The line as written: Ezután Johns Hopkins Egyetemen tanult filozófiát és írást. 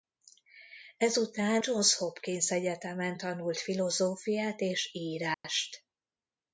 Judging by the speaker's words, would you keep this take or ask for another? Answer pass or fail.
pass